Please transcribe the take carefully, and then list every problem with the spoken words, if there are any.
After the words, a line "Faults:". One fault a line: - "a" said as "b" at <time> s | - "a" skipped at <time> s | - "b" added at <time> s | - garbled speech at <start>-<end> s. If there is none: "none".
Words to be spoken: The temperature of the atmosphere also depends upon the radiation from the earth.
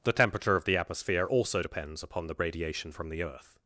The temperature of the atmosphere also depends upon the radiation from the earth.
Faults:
none